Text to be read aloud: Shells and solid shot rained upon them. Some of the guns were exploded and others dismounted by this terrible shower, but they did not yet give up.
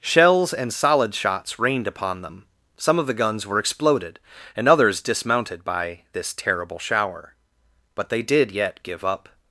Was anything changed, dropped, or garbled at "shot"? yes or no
yes